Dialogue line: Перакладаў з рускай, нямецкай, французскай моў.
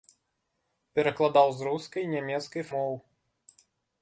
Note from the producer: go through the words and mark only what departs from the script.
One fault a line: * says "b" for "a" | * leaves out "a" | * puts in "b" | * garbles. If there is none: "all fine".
* leaves out "французскай"